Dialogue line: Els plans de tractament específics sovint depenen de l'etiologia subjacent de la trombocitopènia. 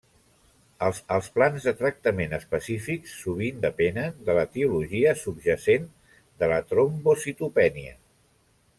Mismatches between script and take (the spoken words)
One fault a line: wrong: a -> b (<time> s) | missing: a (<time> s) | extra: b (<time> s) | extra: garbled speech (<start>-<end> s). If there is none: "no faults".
extra: els (1.1 s)